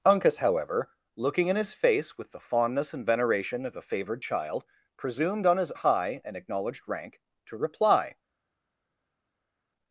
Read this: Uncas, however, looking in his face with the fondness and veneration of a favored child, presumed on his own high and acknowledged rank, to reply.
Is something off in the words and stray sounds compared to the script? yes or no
yes